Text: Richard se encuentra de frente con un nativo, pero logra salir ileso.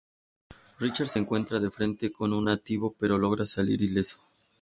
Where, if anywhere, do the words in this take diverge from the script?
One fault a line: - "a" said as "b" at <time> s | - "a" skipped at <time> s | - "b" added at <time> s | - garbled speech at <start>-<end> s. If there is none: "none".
none